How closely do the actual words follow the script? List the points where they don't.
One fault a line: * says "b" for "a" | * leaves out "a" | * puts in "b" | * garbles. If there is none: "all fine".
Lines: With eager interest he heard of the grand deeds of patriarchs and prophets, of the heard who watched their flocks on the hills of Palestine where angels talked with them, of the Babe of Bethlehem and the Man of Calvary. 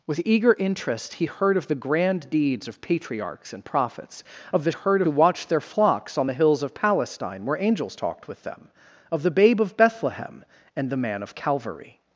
all fine